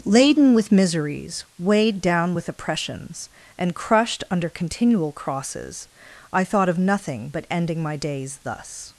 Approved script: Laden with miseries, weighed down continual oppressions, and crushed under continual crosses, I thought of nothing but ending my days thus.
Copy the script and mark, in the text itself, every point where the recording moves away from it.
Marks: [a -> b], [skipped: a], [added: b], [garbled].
Laden with miseries, weighed down [continual -> with] oppressions, and crushed under continual crosses, I thought of nothing but ending my days thus.